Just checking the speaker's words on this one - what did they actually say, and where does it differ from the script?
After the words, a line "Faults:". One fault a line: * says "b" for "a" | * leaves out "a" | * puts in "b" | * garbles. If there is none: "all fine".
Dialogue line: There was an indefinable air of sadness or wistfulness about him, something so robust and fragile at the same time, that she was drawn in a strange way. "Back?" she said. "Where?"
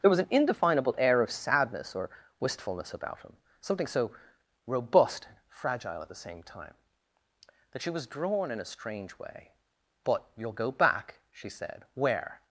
There was an indefinable air of sadness or wistfulness about him, something so robust and fragile at the same time, that she was drawn in a strange way. "But you'll go back?" she said. "Where?"
Faults:
* puts in "But you'll go"